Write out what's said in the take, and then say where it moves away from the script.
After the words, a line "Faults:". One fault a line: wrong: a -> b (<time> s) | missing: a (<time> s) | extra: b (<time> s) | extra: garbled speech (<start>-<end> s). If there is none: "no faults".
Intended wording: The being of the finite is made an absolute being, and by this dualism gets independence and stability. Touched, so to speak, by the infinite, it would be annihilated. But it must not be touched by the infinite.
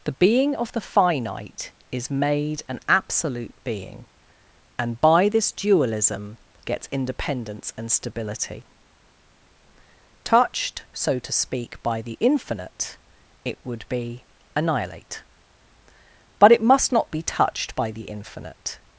The being of the finite is made an absolute being, and by this dualism gets independence and stability. Touched, so to speak, by the infinite, it would be annihilate. But it must not be touched by the infinite.
Faults:
wrong: annihilated -> annihilate (14.6 s)